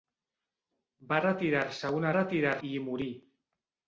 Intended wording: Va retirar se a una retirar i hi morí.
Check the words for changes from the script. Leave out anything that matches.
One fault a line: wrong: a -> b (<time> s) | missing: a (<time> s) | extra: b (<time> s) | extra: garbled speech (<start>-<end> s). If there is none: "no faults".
no faults